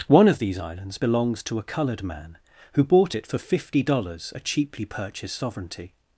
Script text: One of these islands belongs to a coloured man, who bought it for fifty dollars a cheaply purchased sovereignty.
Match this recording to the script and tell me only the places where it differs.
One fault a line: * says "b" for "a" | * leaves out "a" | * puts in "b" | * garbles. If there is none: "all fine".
all fine